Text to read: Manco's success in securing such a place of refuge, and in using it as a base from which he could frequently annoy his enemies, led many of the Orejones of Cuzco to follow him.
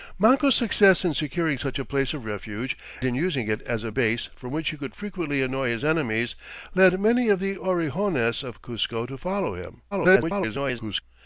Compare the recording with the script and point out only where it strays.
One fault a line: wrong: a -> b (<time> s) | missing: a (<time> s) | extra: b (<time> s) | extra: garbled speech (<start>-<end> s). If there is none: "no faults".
missing: and (2.8 s)
extra: garbled speech (9.9-11.0 s)